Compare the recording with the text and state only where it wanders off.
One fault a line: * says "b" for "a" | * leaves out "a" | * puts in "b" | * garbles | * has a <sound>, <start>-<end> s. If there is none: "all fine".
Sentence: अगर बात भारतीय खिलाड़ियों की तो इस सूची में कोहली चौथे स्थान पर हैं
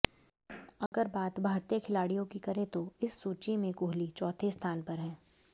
* has a dropout, 0.9-0.9 s
* puts in "करें"